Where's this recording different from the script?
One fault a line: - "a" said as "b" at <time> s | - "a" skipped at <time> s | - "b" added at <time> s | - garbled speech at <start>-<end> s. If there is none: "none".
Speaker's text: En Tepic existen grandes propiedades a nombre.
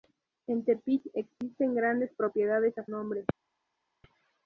none